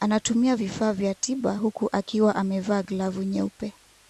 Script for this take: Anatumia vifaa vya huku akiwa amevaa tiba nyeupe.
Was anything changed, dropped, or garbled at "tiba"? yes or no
yes